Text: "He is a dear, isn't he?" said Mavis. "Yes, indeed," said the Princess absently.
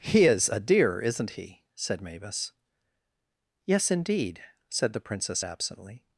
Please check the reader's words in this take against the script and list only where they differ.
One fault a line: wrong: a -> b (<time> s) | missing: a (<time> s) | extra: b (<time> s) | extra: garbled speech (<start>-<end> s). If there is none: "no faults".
no faults